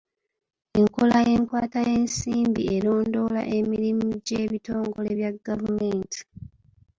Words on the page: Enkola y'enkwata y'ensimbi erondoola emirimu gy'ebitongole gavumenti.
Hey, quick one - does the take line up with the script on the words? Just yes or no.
no